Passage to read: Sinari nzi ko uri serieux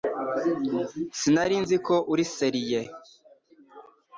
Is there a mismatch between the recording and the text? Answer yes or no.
no